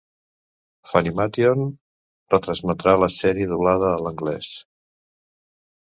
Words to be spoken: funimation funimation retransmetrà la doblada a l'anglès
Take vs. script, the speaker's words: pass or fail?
fail